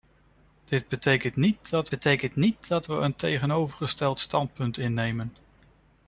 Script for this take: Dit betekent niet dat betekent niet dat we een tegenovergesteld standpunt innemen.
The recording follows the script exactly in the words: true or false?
true